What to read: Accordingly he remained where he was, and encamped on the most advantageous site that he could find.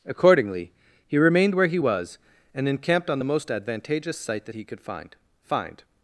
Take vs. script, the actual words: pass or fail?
fail